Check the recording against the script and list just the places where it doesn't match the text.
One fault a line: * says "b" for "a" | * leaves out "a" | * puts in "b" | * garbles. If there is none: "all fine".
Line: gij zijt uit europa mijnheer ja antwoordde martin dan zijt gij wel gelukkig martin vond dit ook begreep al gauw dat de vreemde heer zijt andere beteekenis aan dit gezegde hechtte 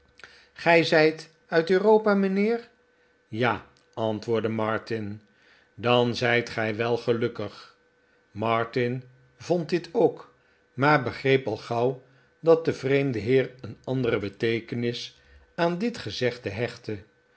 * puts in "maar"
* says "een" for "zijt"